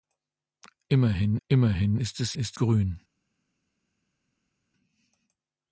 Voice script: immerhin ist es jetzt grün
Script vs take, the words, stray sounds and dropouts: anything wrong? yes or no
yes